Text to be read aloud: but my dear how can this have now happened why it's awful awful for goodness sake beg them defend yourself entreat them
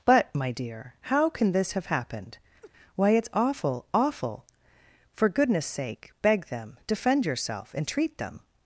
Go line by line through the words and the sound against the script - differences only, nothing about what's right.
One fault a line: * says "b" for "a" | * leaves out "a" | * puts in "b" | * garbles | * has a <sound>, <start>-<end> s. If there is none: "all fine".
* leaves out "now"
* has a laugh, 2.6-2.7 s